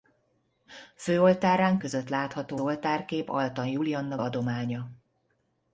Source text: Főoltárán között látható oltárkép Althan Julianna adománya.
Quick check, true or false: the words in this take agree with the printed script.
true